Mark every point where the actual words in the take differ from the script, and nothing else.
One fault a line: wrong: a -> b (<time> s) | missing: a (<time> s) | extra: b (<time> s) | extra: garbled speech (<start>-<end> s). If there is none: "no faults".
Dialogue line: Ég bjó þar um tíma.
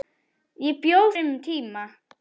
missing: þar (1.0 s)